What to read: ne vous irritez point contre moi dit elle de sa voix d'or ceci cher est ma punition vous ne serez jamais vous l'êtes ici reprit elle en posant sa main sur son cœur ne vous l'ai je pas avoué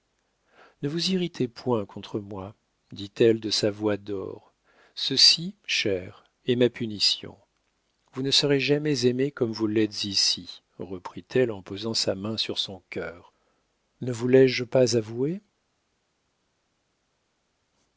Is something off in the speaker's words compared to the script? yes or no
yes